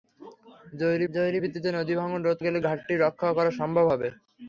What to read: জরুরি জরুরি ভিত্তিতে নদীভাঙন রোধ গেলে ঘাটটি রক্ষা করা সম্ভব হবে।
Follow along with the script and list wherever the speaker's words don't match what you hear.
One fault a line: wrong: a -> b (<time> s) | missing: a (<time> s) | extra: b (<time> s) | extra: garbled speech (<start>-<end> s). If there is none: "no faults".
no faults